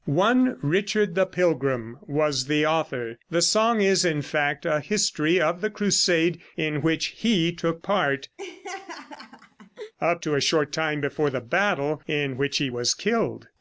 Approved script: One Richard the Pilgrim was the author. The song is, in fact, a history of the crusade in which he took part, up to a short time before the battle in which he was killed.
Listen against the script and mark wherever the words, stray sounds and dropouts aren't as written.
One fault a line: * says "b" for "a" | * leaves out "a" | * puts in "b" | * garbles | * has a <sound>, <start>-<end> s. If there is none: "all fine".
* has a laugh, 8.4-9.9 s